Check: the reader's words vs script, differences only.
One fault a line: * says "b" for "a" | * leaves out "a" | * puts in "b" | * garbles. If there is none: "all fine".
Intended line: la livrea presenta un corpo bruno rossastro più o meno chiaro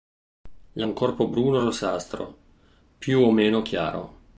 * leaves out "livrea presenta"